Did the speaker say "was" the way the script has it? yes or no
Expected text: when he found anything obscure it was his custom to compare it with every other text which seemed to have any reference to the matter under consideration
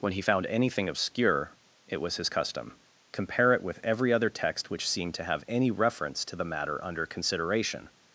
yes